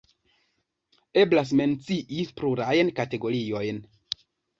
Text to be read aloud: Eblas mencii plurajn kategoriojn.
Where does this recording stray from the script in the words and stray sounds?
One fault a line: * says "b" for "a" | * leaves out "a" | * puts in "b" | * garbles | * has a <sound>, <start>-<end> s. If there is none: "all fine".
all fine